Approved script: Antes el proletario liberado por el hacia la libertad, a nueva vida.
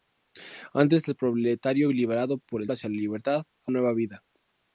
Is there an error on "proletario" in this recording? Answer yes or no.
no